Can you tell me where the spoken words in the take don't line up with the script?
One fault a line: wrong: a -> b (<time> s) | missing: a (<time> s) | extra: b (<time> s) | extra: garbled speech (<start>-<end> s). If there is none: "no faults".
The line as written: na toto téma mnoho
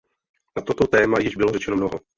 extra: již bylo řečeno (1.2 s)